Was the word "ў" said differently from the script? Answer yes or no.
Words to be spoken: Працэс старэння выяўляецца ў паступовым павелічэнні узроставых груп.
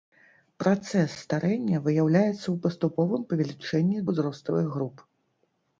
no